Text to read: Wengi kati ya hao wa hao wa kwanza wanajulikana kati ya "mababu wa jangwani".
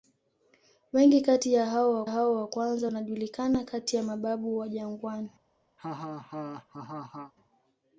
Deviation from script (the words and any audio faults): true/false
true